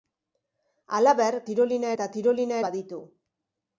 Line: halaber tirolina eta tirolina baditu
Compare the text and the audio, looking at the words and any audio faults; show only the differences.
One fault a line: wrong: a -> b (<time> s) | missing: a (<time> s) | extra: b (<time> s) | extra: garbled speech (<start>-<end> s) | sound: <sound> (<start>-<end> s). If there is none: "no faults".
no faults